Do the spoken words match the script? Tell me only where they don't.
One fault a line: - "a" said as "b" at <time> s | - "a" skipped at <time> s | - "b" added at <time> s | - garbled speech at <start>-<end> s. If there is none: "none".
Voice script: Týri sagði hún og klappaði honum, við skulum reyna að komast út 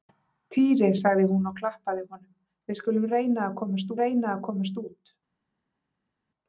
- "reyna að komast" added at 4.0 s